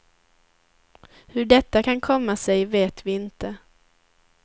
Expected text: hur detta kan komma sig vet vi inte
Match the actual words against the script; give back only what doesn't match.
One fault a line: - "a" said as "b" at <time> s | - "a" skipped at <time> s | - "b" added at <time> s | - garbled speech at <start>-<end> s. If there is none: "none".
none